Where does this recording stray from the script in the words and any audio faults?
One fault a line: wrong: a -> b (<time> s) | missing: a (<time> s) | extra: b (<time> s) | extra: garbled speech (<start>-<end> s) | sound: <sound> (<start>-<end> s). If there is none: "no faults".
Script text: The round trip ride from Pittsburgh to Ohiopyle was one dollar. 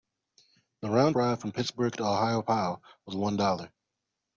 missing: trip (1.1 s)